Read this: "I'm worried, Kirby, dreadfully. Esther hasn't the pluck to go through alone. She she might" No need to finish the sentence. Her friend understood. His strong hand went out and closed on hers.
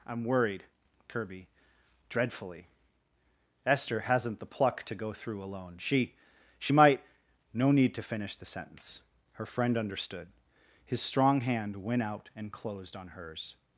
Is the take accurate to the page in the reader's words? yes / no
yes